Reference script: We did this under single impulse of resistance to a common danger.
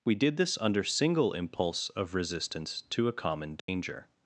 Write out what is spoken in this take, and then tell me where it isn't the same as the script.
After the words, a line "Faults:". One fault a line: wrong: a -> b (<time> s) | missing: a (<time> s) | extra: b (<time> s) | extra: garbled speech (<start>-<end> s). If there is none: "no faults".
We did this under single impulse of resistance to a common danger.
Faults:
no faults